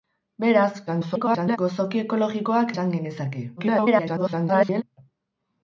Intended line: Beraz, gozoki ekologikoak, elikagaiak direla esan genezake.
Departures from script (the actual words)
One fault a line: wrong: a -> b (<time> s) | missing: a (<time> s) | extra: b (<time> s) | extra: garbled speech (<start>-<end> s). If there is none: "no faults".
extra: garbled speech (0.9-1.6 s)
missing: elikagaiak direla (2.7 s)
extra: garbled speech (3.6-4.8 s)